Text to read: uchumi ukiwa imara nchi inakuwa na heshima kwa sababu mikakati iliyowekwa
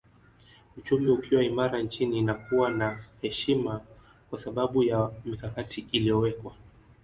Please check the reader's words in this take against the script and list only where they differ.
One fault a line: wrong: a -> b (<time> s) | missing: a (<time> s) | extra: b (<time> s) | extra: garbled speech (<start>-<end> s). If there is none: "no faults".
extra: ya (4.8 s)